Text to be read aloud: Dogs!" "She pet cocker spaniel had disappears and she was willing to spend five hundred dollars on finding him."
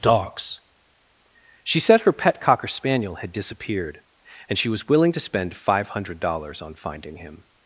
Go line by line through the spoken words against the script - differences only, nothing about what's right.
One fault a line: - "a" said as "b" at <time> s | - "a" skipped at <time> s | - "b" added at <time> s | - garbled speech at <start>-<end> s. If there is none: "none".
- "said her" added at 1.8 s
- "disappears" said as "disappeared" at 3.3 s